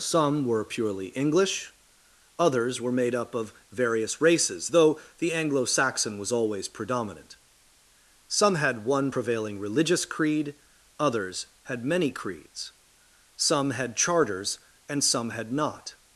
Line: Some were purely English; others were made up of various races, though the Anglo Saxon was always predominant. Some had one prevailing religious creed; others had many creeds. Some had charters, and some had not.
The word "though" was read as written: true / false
true